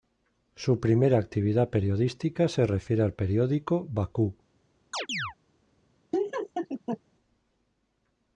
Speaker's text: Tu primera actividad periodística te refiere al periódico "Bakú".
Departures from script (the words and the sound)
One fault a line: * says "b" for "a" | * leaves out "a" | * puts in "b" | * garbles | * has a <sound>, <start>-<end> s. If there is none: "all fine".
* says "Su" for "Tu"
* says "se" for "te"
* has a chirp, 4.9-5.3 s
* has a laugh, 6.1-7.0 s